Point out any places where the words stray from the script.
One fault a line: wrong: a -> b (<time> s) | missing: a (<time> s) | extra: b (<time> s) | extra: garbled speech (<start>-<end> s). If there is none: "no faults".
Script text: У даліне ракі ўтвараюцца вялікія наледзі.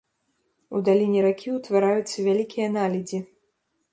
no faults